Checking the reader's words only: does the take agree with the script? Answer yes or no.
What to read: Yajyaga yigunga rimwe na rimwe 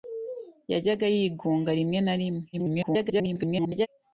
no